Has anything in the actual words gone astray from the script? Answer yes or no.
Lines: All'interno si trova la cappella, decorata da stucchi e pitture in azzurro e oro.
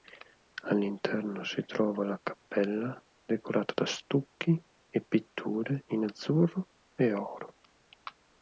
no